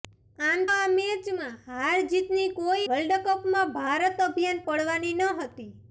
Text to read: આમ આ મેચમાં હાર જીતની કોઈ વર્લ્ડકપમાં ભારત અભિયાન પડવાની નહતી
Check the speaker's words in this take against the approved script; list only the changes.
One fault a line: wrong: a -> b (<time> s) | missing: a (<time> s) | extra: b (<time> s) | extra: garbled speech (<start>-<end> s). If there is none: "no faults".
no faults